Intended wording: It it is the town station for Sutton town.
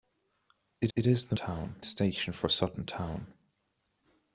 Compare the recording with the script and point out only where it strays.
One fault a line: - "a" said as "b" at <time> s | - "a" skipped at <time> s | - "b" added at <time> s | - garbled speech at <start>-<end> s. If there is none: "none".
none